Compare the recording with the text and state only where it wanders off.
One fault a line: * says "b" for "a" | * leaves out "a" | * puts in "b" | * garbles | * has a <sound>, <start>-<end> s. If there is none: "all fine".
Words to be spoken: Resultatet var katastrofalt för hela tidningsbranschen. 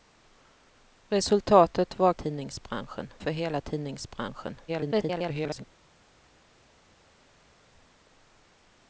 * says "tidningsbranschen" for "katastrofalt"
* garbles